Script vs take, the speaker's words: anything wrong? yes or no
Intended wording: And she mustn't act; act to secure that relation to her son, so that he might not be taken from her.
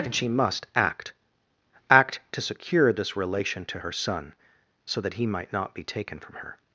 yes